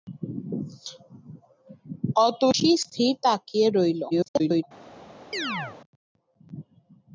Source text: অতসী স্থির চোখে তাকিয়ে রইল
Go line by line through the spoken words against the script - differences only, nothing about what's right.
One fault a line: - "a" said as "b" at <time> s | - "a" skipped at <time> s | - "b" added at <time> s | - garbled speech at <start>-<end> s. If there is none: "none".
- "চোখে" skipped at 3.1 s
- garbled speech at 4.1-4.6 s